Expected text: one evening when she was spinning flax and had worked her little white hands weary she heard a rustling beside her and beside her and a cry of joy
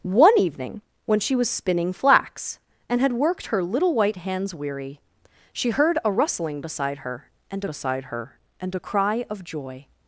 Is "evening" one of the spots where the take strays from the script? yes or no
no